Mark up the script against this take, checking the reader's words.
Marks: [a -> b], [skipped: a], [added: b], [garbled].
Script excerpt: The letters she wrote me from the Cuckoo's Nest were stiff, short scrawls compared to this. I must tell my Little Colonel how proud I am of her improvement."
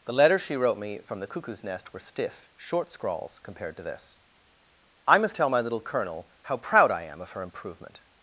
The letters she wrote me from the Cuckoo's Nest were stiff, short scrawls compared to this. I must tell my Little Colonel how proud I am of her improvement."